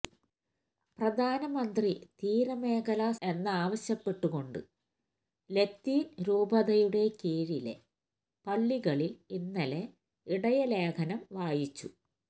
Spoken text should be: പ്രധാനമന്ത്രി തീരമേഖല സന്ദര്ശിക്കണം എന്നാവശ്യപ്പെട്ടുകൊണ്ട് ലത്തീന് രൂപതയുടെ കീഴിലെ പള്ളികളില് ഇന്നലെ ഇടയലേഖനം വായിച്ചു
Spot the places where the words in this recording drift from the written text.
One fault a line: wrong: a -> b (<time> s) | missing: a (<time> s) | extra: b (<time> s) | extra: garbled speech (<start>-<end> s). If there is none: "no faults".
missing: സന്ദര്ശിക്കണം (3.1 s)